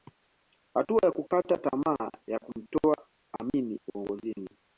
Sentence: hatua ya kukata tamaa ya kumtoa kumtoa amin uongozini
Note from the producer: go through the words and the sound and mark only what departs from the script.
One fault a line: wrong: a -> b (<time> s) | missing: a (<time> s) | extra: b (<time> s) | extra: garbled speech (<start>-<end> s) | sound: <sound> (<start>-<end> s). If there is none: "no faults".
missing: kumtoa (3.1 s)